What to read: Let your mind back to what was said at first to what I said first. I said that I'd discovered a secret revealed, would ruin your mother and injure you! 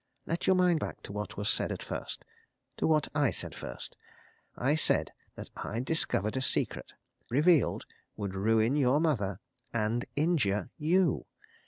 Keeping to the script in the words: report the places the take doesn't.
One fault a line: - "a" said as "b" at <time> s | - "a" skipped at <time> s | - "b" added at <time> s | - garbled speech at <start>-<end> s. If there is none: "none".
none